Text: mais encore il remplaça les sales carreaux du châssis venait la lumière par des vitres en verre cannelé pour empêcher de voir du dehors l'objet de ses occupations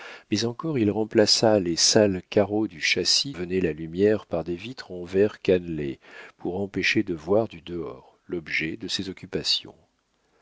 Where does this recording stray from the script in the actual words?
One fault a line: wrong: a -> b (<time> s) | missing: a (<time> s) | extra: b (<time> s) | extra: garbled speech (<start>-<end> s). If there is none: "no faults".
no faults